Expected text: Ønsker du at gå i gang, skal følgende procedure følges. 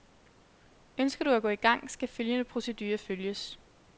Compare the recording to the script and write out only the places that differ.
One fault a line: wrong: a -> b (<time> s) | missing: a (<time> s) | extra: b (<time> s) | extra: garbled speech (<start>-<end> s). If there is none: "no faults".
no faults